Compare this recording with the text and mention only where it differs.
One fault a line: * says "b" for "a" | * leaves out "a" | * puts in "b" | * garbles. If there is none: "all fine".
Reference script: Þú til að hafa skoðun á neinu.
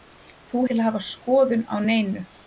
all fine